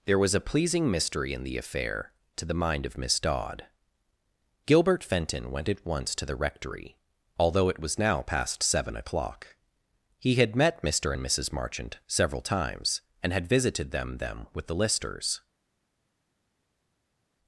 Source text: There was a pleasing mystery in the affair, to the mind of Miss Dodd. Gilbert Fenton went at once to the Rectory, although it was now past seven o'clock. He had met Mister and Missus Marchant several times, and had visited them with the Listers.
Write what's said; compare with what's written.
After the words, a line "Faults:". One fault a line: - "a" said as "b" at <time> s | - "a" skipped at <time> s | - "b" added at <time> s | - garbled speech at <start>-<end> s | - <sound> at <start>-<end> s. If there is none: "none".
There was a pleasing mystery in the affair, to the mind of Miss Dodd. Gilbert Fenton went at once to the Rectory, although it was now past seven o'clock. He had met Mister and Missus Marchant several times, and had visited them them with the Listers.
Faults:
- "them" added at 14.2 s